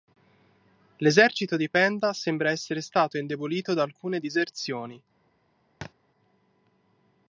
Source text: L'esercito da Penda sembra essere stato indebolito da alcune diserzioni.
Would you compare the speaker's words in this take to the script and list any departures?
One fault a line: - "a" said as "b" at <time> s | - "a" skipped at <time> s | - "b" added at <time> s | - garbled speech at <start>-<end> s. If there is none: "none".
- "da" said as "di" at 1.6 s